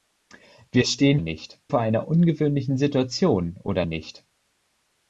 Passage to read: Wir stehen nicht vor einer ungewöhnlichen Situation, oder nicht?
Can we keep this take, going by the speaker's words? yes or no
yes